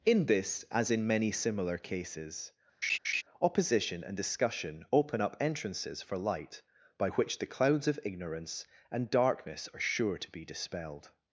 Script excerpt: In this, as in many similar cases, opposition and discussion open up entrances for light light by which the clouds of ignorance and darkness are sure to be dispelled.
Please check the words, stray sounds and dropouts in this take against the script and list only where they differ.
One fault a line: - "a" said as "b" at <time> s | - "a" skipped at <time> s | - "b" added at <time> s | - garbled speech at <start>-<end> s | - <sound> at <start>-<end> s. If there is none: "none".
- laugh at 2.8-3.2 s
- "light" skipped at 6.6 s